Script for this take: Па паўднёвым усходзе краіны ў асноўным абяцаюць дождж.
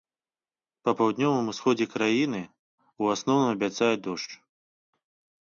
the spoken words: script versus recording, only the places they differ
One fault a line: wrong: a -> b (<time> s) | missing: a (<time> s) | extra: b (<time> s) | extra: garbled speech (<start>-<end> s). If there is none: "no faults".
no faults